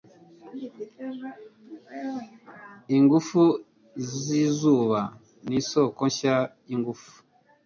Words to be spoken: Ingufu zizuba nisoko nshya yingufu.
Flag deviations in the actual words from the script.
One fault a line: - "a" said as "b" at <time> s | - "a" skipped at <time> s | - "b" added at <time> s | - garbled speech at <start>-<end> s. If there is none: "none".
none